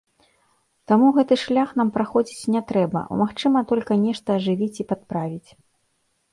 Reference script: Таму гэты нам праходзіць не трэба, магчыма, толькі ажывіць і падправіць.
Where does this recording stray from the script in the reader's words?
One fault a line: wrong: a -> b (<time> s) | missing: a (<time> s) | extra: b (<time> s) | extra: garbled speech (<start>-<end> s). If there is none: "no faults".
extra: шлях (1.4 s)
extra: нешта (4.1 s)